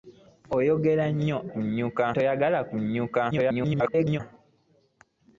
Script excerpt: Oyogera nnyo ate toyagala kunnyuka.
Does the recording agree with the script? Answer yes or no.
no